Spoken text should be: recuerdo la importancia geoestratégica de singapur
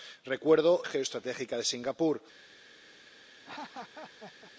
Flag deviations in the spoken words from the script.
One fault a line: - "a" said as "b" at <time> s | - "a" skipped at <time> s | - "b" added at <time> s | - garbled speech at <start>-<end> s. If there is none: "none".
- "la importancia" skipped at 0.8 s